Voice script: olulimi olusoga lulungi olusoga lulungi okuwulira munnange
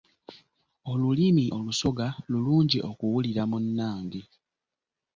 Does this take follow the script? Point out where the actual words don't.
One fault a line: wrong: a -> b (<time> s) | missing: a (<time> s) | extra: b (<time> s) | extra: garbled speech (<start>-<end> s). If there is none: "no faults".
missing: olusoga lulungi (2.8 s)